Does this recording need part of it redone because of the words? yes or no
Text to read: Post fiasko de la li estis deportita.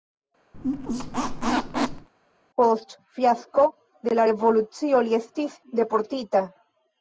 yes